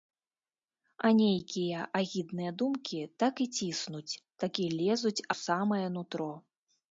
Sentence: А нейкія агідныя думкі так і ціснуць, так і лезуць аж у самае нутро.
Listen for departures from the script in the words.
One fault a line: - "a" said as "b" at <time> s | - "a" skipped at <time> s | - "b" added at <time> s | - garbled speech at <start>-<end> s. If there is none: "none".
- "аж" skipped at 5.2 s